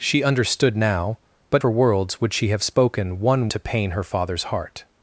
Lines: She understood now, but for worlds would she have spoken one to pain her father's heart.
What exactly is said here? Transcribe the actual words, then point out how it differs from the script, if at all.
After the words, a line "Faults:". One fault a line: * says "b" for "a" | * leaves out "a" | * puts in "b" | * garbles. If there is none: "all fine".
She understood now, but for worlds would she have spoken one to pain her father's heart.
Faults:
all fine